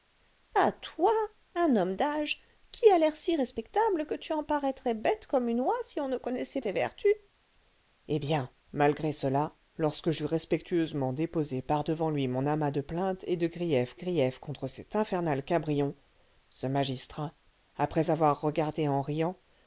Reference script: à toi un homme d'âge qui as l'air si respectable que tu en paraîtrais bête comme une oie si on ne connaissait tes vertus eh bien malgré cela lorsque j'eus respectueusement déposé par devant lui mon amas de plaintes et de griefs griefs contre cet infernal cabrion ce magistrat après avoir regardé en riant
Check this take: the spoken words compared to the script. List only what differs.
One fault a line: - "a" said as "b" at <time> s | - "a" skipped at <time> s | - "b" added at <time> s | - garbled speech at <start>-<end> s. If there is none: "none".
none